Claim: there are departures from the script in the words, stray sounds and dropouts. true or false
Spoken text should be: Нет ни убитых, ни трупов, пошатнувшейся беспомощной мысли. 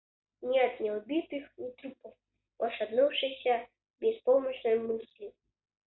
false